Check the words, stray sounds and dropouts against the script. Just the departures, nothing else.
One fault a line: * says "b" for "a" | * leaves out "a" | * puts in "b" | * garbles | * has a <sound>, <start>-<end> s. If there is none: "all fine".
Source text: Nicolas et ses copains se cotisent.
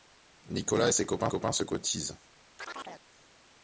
* puts in "copains"
* has a chirp, 2.6-3.1 s